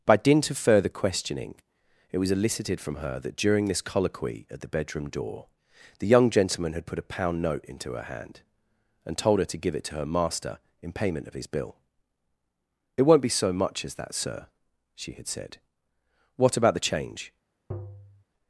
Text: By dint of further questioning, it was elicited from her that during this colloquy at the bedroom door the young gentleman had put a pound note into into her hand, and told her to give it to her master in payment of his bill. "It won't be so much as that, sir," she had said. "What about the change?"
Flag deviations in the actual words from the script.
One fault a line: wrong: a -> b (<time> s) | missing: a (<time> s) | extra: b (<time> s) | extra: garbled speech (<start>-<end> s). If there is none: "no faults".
missing: into (7.9 s)